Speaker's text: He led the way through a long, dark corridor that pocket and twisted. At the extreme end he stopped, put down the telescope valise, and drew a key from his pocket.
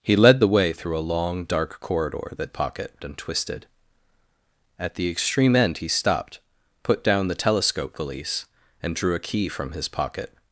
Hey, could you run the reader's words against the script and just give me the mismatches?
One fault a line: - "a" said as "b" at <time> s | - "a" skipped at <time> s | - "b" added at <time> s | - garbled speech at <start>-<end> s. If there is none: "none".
none